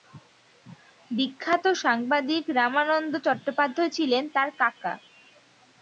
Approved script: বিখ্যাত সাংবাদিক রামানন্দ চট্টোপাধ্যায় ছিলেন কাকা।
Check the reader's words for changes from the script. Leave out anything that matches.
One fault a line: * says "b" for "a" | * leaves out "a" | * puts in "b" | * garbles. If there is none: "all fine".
* puts in "তার"